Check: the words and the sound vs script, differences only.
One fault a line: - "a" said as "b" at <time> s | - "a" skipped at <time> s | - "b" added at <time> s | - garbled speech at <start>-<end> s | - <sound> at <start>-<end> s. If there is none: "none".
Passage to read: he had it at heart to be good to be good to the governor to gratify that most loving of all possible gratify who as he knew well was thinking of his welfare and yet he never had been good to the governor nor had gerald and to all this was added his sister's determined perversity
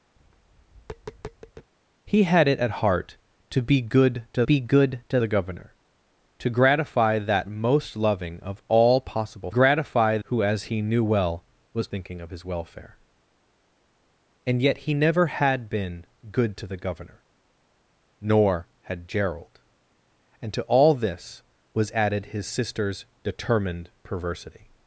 - tap at 0.2-1.7 s